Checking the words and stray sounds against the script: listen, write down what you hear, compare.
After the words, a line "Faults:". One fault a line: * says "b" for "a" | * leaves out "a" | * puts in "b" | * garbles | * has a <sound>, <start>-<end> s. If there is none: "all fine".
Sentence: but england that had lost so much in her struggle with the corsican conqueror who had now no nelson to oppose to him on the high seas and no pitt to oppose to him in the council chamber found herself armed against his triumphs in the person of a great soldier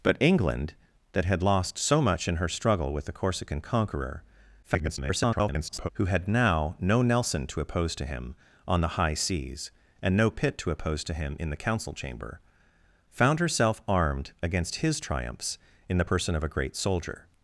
but england that had lost so much in her struggle with the corsican conqueror [garbled] who had now no nelson to oppose to him on the high seas and no pitt to oppose to him in the council chamber found herself armed against his triumphs in the person of a great soldier
Faults:
* garbles